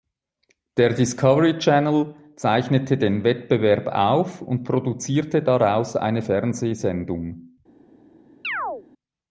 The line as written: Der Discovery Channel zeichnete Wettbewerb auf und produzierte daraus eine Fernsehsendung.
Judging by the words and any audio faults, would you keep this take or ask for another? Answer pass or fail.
fail